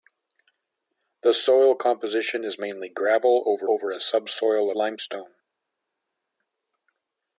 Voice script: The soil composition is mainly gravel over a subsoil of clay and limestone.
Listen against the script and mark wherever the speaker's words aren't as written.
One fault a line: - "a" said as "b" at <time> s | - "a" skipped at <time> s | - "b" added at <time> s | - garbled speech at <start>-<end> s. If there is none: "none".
- "over" added at 3.7 s
- "of clay and" skipped at 4.7 s